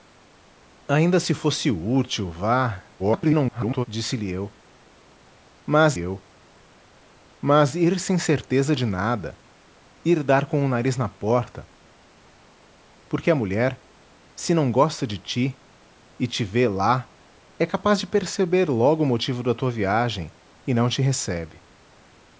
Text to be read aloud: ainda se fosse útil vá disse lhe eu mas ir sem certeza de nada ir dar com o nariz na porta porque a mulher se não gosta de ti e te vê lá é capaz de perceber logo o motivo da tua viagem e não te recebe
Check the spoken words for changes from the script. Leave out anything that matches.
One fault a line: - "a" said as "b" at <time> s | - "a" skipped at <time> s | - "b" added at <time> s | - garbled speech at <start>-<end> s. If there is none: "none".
- garbled speech at 3.0-3.9 s
- "eu mas" added at 6.0 s